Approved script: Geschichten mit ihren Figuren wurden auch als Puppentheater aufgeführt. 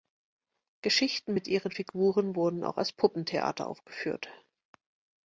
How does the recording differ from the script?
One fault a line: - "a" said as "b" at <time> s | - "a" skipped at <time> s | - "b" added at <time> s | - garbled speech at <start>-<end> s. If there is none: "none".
none